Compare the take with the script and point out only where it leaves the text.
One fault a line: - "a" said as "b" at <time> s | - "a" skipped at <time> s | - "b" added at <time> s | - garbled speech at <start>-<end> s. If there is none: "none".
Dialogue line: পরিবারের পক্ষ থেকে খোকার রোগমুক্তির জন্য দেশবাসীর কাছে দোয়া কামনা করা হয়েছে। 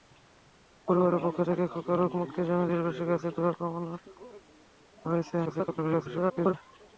- garbled speech at 5.5-6.5 s